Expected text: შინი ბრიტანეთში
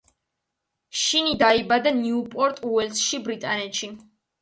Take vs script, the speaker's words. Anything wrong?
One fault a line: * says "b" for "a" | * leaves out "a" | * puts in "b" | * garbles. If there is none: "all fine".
* puts in "დაიბადა ნიუპორტ უელსში"